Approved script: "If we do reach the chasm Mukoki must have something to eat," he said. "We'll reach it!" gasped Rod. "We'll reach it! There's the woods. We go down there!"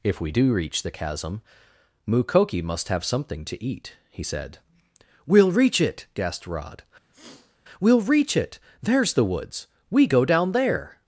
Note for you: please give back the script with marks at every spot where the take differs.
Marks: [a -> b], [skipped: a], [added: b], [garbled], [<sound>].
"If we do reach the chasm Mukoki must have something to eat," he said. "We'll reach it!" gasped Rod. [sniff] "We'll reach it! There's the woods. We go down there!"